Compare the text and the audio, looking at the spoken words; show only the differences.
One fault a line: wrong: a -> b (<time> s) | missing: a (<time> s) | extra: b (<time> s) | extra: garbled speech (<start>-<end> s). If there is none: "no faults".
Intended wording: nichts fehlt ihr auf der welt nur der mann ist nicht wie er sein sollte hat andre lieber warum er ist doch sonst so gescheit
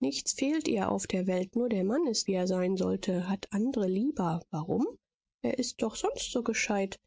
missing: nicht (2.3 s)